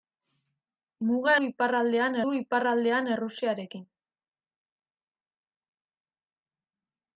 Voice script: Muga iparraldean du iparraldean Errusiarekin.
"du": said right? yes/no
yes